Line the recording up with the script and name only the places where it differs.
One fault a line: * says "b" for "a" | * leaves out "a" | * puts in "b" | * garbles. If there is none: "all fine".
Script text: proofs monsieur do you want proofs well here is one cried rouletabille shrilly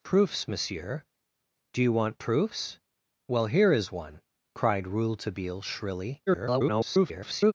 * garbles